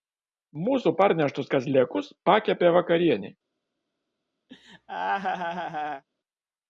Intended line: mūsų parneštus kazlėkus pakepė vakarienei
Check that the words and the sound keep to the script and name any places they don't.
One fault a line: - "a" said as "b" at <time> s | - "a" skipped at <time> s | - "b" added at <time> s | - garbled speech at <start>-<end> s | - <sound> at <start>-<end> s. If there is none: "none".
- laugh at 4.5-6.0 s